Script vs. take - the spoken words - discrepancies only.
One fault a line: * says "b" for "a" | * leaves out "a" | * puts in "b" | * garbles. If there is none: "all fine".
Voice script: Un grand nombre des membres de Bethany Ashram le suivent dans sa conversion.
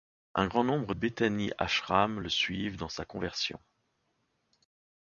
* leaves out "des membres de"